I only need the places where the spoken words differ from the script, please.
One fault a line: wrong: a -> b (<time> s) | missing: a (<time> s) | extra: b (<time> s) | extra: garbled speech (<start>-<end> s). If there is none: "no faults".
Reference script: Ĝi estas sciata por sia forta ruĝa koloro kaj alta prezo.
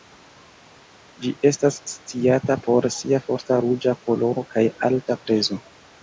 no faults